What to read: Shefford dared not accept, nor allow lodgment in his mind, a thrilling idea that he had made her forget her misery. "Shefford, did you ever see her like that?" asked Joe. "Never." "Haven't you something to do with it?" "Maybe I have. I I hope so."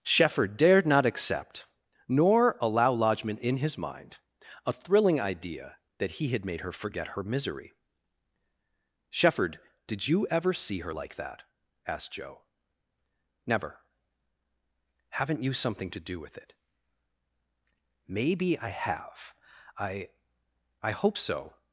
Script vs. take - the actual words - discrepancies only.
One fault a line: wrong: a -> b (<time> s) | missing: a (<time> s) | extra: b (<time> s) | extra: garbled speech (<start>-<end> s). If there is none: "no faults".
no faults